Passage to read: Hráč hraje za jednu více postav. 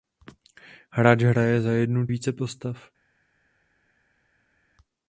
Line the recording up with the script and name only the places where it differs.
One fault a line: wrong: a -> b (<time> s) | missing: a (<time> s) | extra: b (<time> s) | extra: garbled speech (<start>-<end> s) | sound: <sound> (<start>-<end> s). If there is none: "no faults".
no faults